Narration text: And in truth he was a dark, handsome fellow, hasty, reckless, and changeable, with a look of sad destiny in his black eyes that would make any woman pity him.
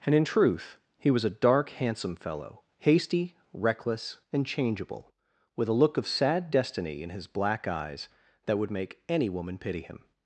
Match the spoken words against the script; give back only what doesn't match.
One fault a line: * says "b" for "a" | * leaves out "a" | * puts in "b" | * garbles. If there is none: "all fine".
all fine